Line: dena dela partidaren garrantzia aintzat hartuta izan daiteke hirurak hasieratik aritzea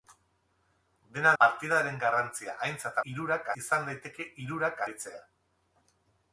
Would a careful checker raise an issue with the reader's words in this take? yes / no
yes